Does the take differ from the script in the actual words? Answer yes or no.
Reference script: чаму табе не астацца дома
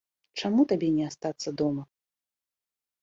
no